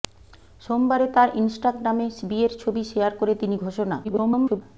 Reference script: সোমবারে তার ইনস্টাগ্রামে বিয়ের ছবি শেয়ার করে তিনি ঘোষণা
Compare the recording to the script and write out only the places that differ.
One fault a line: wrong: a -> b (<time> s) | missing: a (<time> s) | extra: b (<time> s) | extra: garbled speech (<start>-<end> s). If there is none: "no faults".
extra: garbled speech (4.0-4.6 s)